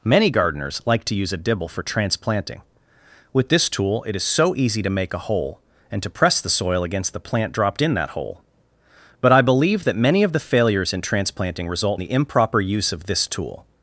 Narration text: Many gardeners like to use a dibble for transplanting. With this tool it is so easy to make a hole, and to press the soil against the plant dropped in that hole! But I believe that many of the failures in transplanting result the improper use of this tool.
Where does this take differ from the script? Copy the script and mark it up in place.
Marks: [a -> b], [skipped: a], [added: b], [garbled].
Many gardeners like to use a dibble for transplanting. With this tool it is so easy to make a hole, and to press the soil against the plant dropped in that hole! But I believe that many of the failures in transplanting result the improper use of this tool.